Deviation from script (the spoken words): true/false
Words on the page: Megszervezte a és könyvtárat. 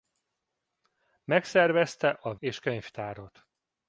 false